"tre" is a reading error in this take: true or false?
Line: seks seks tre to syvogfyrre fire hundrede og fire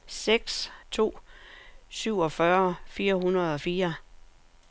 true